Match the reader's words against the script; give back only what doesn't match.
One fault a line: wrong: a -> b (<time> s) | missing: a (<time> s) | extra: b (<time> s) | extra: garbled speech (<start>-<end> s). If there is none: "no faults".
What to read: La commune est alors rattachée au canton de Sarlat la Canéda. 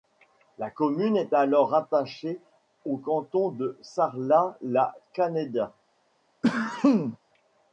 no faults